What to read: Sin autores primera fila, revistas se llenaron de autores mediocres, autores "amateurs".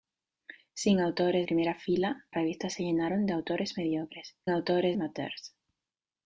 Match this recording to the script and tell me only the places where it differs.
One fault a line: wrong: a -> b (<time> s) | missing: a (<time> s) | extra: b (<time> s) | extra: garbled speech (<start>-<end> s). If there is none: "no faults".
no faults